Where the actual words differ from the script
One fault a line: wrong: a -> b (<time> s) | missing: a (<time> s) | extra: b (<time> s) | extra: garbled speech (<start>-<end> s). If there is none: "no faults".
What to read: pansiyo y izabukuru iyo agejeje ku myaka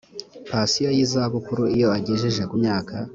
no faults